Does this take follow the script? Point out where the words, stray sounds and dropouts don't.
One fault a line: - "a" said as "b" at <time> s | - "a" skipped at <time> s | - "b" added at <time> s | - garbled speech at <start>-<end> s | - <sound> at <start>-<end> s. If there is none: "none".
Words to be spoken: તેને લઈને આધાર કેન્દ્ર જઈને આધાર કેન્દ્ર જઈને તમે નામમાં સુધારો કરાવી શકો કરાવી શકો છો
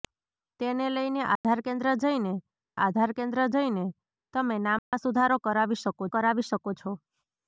- dropout at 1.4-1.4 s
- dropout at 4.8-4.9 s